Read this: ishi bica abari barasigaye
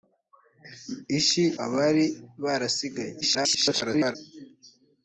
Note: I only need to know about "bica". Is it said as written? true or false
false